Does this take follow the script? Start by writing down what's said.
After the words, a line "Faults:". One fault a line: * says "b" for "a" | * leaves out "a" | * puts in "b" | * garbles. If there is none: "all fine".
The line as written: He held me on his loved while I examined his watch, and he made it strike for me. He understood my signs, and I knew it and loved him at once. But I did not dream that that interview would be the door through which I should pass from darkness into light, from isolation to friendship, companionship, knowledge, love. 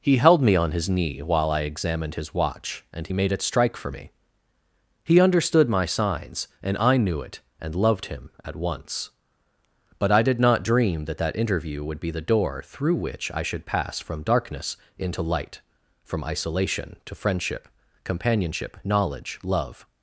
He held me on his knee while I examined his watch, and he made it strike for me. He understood my signs, and I knew it and loved him at once. But I did not dream that that interview would be the door through which I should pass from darkness into light, from isolation to friendship, companionship, knowledge, love.
Faults:
* says "knee" for "loved"